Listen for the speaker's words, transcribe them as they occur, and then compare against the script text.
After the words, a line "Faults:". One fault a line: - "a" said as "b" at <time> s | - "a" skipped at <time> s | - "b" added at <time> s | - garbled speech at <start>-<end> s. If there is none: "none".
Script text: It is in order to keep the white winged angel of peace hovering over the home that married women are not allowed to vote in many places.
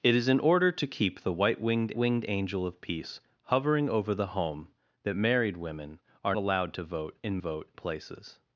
It is in order to keep the white winged winged angel of peace hovering over the home that married women are allowed to vote in vote places.
Faults:
- "winged" added at 2.0 s
- "not" skipped at 6.4 s
- "many" said as "vote" at 7.4 s